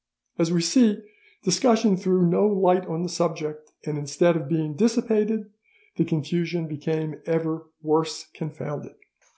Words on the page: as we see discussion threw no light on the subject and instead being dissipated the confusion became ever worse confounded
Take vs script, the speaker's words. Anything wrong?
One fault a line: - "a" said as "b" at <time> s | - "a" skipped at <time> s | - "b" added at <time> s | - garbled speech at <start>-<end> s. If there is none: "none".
- "of" added at 4.3 s